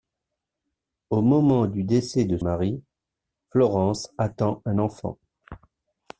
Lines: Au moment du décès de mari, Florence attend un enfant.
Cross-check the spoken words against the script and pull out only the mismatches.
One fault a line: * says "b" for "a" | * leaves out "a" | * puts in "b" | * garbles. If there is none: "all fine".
all fine